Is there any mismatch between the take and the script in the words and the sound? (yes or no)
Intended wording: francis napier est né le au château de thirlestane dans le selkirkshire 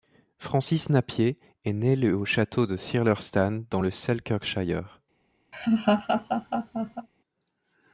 yes